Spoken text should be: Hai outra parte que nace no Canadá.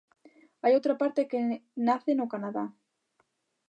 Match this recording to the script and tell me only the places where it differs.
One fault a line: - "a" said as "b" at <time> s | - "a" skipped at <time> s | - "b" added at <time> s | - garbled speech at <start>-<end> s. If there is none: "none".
none